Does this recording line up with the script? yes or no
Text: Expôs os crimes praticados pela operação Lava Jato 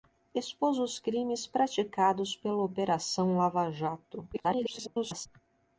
no